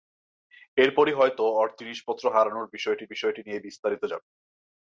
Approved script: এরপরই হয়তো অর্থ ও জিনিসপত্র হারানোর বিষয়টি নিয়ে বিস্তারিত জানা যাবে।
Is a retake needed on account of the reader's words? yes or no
yes